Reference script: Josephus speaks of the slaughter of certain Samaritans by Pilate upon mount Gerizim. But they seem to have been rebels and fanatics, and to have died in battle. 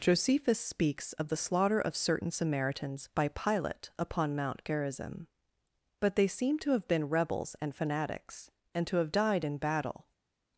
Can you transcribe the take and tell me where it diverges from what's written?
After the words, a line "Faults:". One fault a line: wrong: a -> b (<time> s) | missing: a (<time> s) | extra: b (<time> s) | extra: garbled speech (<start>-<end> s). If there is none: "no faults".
Josephus speaks of the slaughter of certain Samaritans by Pilate upon mount Gerizim. But they seem to have been rebels and fanatics, and to have died in battle.
Faults:
no faults